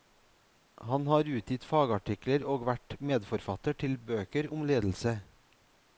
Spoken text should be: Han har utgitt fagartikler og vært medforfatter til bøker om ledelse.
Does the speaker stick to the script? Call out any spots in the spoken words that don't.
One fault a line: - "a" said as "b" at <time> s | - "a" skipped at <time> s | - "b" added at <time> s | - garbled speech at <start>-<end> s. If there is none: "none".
none